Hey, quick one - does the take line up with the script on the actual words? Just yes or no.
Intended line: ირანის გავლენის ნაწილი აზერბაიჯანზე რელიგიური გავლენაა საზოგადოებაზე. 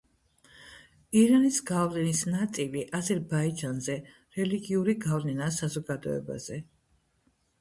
yes